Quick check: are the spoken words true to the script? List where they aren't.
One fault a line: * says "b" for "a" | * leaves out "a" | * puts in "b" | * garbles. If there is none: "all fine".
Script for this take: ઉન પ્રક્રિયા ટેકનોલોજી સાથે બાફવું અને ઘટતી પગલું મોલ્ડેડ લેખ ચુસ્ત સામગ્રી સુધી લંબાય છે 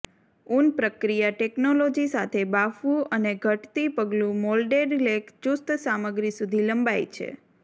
all fine